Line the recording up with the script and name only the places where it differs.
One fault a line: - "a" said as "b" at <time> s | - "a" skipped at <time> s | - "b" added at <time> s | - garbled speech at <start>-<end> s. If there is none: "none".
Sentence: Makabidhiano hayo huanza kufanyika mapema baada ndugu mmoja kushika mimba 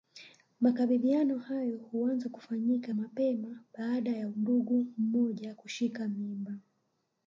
- "ya" added at 4.1 s